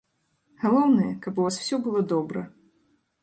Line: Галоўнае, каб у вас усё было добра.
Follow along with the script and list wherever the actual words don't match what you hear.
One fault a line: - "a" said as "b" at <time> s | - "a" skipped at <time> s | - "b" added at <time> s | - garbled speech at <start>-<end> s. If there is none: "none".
none